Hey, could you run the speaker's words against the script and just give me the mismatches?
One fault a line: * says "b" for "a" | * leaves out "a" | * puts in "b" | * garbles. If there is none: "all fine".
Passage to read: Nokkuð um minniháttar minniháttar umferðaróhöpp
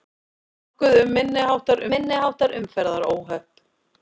all fine